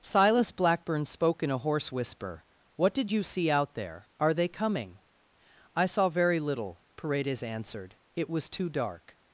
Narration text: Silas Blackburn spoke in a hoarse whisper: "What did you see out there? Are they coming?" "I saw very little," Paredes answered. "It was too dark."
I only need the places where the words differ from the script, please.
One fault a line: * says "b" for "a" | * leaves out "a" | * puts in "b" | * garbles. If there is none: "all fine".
all fine